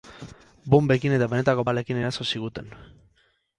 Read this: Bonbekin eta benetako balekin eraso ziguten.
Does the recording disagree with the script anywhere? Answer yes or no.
no